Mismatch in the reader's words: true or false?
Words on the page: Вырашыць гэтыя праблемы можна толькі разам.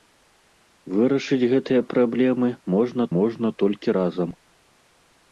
true